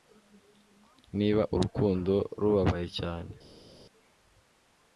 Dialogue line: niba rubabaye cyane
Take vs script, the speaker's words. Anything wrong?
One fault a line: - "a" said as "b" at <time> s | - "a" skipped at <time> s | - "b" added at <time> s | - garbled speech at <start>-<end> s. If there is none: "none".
- "urukundo" added at 1.6 s